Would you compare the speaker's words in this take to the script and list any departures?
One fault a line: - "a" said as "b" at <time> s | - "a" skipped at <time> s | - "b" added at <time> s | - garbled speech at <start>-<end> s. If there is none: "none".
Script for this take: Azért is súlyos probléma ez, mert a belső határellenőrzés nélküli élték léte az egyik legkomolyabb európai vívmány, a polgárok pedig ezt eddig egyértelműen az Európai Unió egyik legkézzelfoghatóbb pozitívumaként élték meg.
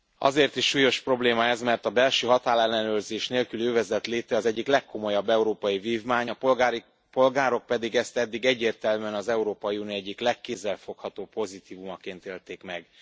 - "élték" said as "övezet" at 3.6 s